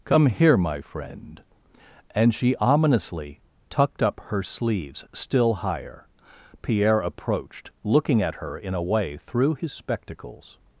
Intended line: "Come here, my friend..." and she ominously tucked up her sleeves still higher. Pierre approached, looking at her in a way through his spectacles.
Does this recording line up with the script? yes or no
yes